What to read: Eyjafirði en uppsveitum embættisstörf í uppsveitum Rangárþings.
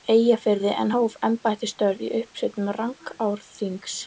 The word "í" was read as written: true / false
true